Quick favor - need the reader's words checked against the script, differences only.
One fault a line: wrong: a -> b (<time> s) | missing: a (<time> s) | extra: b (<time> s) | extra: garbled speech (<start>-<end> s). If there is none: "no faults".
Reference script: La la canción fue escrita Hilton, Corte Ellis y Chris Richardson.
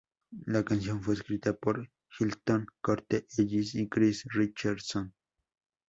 missing: la (0.6 s)
extra: por (1.5 s)